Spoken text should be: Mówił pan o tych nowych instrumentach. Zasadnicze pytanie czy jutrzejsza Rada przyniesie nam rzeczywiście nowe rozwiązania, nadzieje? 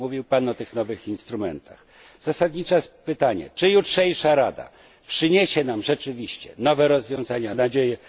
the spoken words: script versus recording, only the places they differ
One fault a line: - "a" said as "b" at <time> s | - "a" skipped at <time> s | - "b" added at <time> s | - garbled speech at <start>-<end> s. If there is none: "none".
none